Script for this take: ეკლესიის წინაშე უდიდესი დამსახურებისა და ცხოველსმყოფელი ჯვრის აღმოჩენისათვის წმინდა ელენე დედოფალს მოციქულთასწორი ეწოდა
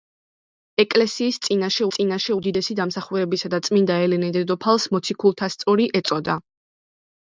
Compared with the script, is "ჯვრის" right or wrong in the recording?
wrong